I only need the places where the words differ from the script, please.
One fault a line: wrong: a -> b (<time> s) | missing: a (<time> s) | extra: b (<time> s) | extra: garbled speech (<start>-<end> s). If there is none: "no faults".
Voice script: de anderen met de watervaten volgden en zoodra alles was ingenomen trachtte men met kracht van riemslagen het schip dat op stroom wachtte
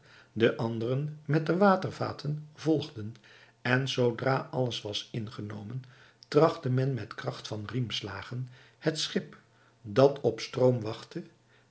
no faults